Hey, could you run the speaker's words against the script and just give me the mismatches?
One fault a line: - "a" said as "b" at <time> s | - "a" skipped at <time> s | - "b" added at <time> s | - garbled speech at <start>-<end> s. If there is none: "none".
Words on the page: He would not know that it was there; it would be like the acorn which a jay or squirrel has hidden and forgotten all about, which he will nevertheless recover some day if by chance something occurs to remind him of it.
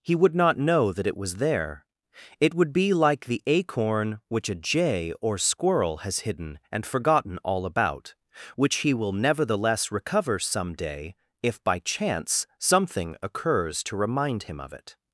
none